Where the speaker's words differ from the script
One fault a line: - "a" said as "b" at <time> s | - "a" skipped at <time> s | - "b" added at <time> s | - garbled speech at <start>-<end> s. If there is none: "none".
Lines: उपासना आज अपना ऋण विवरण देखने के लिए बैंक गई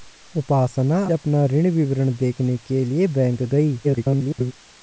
- "आज" skipped at 1.0 s
- garbled speech at 3.8-4.5 s